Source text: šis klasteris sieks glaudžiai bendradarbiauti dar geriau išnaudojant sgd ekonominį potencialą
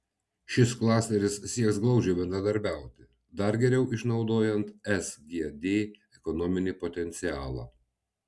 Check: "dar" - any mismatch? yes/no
no